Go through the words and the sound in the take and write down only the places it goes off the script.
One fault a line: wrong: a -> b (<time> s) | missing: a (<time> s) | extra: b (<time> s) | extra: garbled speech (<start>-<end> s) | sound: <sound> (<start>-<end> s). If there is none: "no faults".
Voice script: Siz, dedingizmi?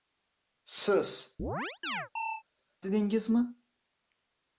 sound: chirp (1.4-2.4 s)